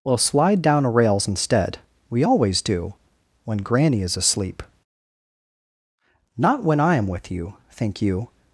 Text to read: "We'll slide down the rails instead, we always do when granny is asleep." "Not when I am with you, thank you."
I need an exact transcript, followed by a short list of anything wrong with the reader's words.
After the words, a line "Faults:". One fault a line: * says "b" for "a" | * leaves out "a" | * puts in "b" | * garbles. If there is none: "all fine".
"We'll slide down a rails instead, we always do when granny is asleep." "Not when I am with you, think you."
Faults:
* says "a" for "the"
* says "think" for "thank"